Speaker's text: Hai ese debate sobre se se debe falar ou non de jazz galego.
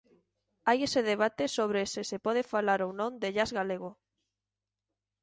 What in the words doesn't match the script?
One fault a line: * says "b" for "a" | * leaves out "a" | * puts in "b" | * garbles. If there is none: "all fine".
* says "pode" for "debe"